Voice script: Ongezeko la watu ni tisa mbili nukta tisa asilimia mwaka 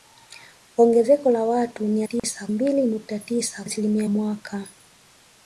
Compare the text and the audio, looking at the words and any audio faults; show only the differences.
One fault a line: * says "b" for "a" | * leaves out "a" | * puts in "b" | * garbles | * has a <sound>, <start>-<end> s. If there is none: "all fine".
* has a dropout, 2.2-2.2 s